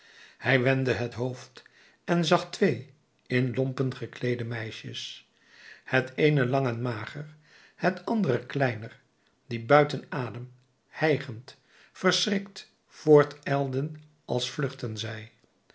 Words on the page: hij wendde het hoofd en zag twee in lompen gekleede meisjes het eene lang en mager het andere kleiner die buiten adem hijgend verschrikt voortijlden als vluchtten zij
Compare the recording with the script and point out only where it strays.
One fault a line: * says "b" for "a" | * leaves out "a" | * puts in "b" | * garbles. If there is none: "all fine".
all fine